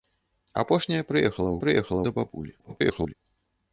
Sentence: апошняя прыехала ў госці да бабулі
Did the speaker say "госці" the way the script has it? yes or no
no